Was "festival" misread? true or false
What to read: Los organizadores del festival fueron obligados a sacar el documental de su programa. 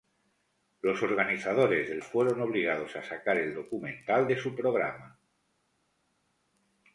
true